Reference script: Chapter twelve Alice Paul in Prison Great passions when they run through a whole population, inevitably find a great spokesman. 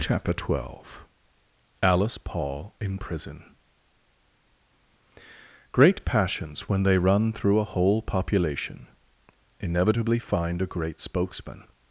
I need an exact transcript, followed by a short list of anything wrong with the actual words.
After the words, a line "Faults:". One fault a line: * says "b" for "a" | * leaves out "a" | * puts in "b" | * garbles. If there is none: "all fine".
Chapter twelve Alice Paul in Prison Great passions when they run through a whole population, inevitably find a great spokesman.
Faults:
all fine